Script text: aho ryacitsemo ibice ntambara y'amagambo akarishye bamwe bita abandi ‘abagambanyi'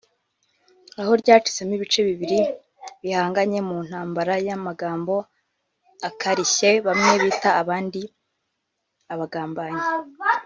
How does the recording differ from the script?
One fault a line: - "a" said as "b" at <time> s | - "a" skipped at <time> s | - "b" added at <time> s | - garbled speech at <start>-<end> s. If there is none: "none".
- "bibiri bihanganye mu" added at 2.1 s